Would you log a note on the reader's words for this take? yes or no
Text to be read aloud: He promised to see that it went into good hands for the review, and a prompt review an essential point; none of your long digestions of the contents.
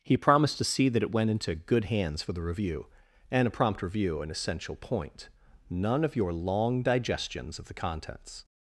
no